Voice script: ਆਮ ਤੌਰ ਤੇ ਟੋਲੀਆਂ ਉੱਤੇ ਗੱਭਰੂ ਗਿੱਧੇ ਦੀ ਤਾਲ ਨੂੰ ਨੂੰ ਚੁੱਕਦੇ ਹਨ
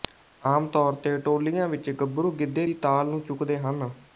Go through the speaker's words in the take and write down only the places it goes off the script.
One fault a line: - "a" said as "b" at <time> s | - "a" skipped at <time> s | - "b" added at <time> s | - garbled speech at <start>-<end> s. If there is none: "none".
- "ਉੱਤੇ" said as "ਵਿੱਚ" at 1.7 s
- "ਨੂੰ" skipped at 3.2 s